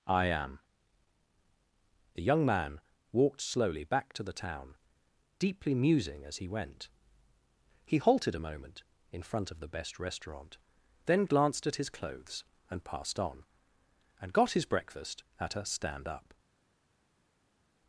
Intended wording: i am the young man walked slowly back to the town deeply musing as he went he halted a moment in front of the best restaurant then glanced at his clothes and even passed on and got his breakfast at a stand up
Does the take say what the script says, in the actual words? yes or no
no